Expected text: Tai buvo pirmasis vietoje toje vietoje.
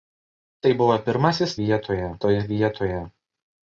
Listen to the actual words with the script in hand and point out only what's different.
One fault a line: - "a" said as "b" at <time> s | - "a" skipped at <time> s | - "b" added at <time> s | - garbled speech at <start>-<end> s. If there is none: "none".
none